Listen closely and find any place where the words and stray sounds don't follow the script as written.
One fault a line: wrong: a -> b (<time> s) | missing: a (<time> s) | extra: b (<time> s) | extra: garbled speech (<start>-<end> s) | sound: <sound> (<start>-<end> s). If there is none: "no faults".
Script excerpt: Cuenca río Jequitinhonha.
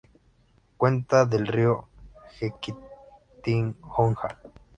extra: del (1.3 s)